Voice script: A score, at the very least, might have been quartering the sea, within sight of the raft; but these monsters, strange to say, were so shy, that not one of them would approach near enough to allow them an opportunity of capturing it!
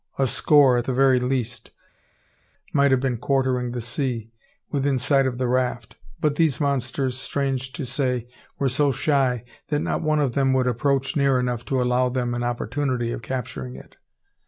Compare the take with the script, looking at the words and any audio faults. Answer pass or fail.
pass